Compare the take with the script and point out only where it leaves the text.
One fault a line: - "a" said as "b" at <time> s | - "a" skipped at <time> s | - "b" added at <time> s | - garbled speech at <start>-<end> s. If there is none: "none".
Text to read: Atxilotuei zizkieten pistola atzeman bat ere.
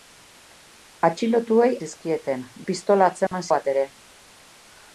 none